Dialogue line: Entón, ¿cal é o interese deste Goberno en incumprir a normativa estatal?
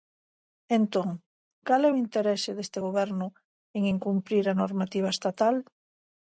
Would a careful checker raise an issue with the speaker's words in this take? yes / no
no